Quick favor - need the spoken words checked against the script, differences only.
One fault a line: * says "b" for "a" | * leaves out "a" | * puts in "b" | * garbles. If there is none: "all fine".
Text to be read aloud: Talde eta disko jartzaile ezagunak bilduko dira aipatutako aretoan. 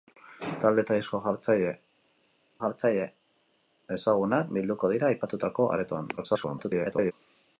* puts in "jartzaile"
* garbles